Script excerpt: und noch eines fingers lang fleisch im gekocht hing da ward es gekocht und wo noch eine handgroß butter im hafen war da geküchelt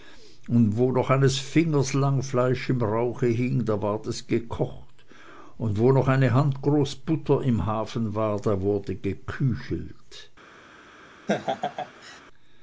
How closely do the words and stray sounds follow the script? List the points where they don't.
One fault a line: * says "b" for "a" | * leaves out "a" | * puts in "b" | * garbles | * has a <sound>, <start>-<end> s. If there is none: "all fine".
* puts in "wo"
* says "rauche" for "gekocht"
* puts in "wurde"
* has a laugh, 11.3-12.2 s